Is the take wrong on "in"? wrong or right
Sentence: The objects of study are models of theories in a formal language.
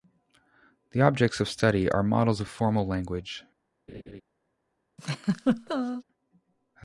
wrong